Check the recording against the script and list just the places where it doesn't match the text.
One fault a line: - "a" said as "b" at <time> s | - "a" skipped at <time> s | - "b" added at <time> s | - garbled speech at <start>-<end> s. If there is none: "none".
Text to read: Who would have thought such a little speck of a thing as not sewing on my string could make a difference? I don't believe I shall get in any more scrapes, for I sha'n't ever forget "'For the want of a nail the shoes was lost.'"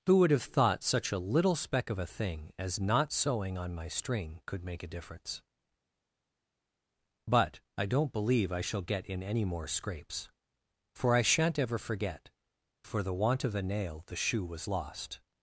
- "But" added at 7.3 s
- "shoes" said as "shoe" at 14.2 s